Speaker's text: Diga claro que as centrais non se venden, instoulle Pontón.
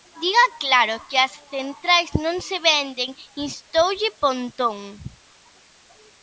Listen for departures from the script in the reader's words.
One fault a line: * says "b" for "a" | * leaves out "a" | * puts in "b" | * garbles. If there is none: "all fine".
all fine